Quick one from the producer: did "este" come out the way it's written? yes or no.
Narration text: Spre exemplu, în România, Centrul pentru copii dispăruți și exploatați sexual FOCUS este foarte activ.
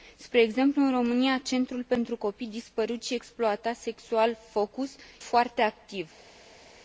no